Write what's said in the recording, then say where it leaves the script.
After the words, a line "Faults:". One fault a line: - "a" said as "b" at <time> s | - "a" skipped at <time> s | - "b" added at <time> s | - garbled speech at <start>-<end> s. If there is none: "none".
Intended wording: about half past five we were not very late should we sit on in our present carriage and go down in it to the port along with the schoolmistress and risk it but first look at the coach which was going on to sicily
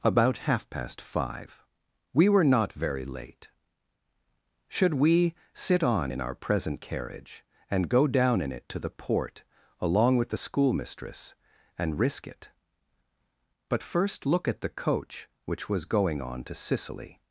about half past five we were not very late should we sit on in our present carriage and go down in it to the port along with the schoolmistress and risk it but first look at the coach which was going on to sicily
Faults:
none